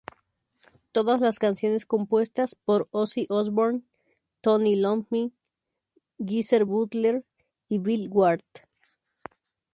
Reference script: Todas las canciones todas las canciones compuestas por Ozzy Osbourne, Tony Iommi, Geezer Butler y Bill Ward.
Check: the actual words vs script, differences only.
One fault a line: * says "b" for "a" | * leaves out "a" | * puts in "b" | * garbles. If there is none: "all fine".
* leaves out "todas las canciones"